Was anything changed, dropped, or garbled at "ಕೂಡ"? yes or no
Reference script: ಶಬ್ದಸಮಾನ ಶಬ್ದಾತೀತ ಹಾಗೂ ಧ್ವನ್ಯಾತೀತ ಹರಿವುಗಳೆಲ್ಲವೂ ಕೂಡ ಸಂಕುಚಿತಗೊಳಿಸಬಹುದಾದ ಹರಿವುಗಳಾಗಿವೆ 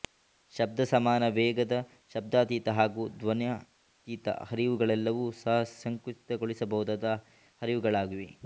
yes